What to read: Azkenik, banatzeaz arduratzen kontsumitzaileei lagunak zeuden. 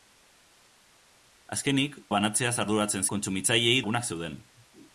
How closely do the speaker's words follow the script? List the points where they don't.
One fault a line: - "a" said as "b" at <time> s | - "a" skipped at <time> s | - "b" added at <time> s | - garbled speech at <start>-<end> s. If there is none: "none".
none